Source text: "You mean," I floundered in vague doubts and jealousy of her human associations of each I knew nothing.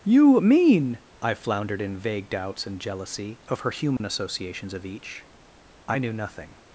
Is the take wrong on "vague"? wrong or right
right